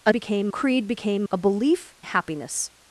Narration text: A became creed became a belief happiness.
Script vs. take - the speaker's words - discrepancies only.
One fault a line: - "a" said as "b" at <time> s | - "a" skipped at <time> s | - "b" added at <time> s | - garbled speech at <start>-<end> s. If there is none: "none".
none